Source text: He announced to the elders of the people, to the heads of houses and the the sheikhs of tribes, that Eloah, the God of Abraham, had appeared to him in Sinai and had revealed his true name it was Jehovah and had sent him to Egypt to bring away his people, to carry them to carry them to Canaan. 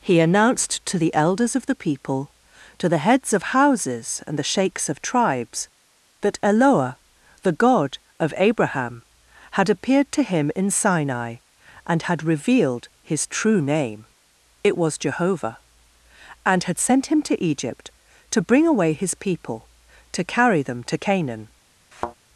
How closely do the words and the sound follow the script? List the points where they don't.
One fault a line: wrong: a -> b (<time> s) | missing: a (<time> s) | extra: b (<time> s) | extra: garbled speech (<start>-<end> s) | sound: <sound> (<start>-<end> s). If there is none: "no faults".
missing: the (4.5 s)
missing: carry them to (21.0 s)
sound: thud (21.9-22.2 s)